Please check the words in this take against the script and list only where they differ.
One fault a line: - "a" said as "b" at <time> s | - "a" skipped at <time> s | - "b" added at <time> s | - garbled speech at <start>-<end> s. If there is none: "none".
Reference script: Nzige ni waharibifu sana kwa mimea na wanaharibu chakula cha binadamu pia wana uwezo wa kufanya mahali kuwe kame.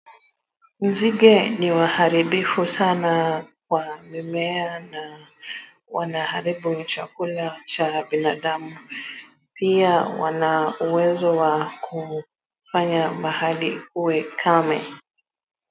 none